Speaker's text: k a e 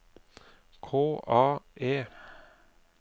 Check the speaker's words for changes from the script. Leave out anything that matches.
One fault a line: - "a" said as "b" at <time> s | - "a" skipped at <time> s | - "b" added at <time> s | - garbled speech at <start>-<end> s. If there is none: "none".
none